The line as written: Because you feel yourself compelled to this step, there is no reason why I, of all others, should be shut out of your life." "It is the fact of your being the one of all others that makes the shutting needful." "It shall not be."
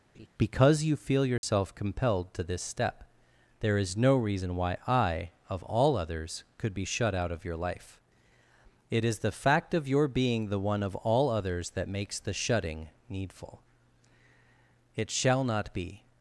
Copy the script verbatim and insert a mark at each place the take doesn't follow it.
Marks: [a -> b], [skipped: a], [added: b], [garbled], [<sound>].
[laugh] Because you feel yourself [dropout] compelled to this step, there is no reason why I, of all others, [should -> could] be shut out of your life." "It is the fact of your being the one of all others that makes the shutting needful." "It shall not be."